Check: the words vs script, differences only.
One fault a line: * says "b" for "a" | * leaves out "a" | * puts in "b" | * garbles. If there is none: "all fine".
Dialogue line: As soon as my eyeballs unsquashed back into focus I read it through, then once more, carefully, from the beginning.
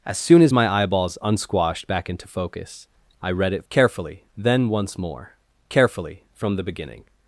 * says "carefully" for "through"